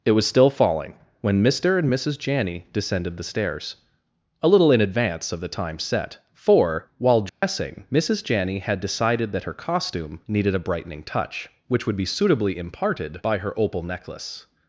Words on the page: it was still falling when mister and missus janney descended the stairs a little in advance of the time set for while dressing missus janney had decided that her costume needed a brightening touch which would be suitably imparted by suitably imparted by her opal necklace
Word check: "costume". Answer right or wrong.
right